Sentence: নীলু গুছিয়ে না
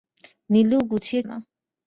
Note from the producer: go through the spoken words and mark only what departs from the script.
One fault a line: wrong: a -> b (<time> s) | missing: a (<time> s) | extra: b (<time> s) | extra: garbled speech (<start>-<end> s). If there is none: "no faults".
no faults